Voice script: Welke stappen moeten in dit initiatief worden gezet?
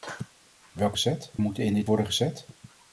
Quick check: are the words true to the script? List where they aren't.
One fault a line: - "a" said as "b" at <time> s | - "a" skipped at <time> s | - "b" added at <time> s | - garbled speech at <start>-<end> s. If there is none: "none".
- "stappen" said as "gezet" at 0.9 s
- "initiatief" skipped at 1.9 s